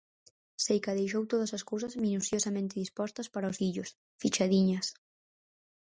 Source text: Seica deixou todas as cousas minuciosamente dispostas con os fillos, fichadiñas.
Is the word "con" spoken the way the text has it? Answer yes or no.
no